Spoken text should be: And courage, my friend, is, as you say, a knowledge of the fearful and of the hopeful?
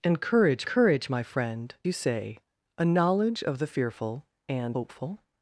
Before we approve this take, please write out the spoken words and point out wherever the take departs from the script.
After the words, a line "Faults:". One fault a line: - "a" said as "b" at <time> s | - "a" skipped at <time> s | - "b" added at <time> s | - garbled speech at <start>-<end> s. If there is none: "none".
And courage courage, my friend, you say, a knowledge of the fearful and hopeful?
Faults:
- "courage" added at 0.6 s
- "is as" skipped at 1.7 s
- "of the" skipped at 4.8 s